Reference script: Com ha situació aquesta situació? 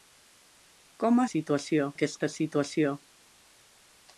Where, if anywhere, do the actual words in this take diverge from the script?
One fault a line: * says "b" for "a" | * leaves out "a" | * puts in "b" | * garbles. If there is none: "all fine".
all fine